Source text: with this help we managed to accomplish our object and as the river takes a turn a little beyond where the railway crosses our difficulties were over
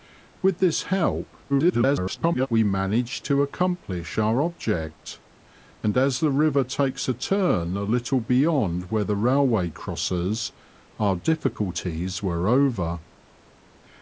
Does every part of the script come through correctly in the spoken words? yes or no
no